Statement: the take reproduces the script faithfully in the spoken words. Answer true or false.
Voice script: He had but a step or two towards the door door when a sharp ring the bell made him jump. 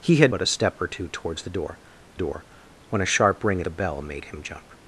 true